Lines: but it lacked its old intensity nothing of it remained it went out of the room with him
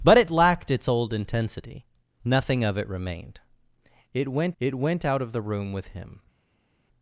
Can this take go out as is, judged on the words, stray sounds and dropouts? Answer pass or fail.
fail